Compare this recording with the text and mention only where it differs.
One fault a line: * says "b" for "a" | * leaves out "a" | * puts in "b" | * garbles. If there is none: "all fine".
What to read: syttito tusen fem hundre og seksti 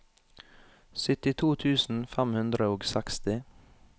all fine